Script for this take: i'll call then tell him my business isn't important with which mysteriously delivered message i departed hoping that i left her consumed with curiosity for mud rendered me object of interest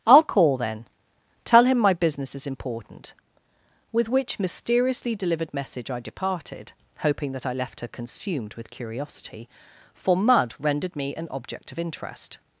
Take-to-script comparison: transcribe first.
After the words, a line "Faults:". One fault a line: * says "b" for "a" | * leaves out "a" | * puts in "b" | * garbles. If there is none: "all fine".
i'll call then tell him my business is important with which mysteriously delivered message i departed hoping that i left her consumed with curiosity for mud rendered me an object of interest
Faults:
* says "is" for "isn't"
* puts in "an"